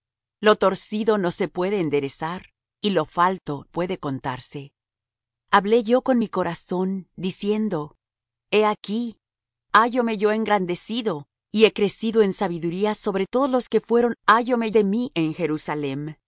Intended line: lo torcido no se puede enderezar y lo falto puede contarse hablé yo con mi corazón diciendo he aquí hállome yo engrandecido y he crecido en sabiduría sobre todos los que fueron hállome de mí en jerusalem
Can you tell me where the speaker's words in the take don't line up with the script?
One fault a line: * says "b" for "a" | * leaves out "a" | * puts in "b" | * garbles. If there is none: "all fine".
all fine